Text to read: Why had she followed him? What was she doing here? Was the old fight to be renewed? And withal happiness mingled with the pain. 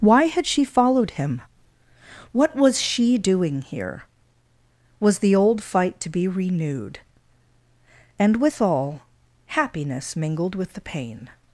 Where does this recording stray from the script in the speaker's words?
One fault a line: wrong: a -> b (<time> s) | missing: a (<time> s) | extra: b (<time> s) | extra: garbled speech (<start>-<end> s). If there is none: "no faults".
no faults